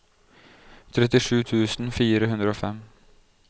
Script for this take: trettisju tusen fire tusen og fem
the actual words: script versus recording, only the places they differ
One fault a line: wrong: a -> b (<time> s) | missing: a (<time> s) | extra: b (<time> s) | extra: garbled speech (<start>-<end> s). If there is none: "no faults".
wrong: tusen -> hundre (2.3 s)